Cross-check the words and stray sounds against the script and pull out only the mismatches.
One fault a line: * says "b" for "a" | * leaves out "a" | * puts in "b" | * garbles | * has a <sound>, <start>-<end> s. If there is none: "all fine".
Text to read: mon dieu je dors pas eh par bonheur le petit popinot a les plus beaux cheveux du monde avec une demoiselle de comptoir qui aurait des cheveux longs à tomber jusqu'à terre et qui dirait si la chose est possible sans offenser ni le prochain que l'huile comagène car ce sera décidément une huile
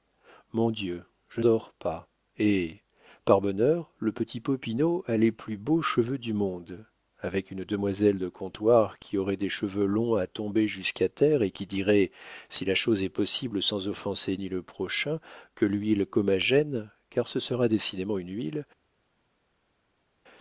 all fine